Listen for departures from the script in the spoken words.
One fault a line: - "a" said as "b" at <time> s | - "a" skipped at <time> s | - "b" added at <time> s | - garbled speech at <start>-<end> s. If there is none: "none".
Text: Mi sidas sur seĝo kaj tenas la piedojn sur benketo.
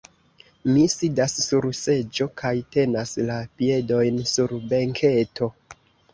none